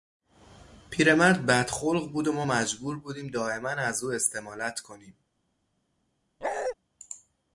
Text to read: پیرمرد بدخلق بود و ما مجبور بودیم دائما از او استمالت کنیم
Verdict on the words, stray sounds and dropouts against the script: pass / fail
fail